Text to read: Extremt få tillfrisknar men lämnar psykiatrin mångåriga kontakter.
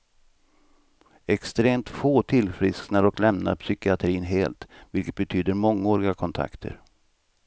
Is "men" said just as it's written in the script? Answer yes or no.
no